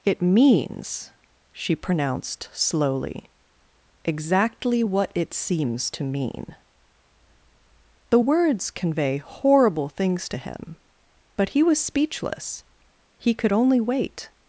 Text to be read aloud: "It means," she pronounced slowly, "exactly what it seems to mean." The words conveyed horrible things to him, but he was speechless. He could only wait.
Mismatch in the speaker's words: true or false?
true